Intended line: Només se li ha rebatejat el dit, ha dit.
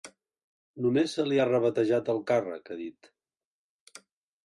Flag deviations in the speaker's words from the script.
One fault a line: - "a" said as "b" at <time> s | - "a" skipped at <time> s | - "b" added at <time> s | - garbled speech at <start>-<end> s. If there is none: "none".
- "dit" said as "càrrec" at 2.3 s